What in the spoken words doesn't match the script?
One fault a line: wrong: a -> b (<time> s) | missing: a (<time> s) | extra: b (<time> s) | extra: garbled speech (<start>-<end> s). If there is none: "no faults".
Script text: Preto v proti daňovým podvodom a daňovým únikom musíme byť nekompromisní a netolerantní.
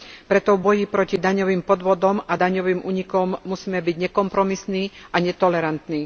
extra: boji (0.6 s)